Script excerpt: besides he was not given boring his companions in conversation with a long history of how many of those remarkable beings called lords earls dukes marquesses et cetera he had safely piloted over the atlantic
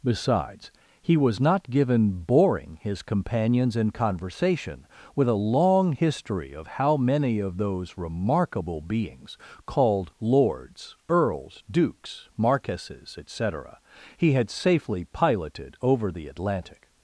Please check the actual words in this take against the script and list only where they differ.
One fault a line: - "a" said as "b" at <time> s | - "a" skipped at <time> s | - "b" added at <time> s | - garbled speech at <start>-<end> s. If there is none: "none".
none